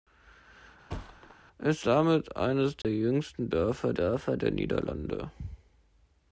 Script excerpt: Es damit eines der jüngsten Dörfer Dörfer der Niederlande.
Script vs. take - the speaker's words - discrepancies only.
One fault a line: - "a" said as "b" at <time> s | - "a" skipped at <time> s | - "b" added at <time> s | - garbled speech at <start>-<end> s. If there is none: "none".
none